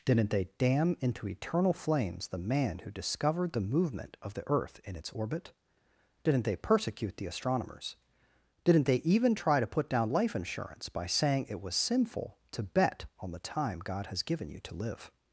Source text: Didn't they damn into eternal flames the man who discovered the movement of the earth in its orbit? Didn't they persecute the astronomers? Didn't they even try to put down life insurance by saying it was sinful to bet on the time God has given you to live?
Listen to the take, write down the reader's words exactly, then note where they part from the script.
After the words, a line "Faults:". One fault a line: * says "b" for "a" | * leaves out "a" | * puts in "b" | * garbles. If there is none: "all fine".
Didn't they damn into eternal flames the man who discovered the movement of the earth in its orbit? Didn't they persecute the astronomers? Didn't they even try to put down life insurance by saying it was sinful to bet on the time God has given you to live?
Faults:
all fine